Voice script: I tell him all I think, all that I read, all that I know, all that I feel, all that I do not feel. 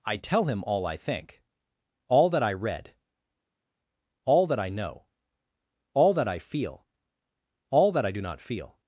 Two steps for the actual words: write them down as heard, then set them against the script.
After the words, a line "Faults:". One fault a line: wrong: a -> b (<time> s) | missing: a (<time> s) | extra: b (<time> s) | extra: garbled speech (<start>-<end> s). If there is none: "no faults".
I tell him all I think, all that I read, all that I know, all that I feel, all that I do not feel.
Faults:
no faults